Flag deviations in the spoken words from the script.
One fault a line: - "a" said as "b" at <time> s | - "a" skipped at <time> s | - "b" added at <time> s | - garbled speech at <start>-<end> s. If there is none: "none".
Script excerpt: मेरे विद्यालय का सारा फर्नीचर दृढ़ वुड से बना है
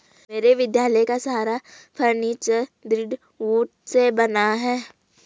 none